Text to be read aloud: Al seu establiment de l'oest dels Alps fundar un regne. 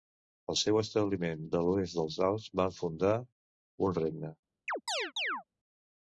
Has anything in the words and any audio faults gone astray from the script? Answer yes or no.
yes